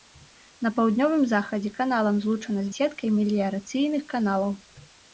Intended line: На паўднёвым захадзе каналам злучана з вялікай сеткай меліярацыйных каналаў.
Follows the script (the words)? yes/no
no